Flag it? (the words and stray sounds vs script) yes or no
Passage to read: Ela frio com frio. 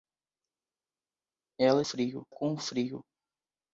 no